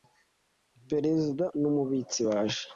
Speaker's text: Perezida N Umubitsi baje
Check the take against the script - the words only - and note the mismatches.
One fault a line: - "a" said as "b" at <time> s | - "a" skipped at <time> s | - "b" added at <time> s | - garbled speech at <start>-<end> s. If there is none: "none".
none